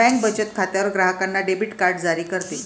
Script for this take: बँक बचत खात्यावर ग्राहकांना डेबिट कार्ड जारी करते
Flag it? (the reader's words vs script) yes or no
no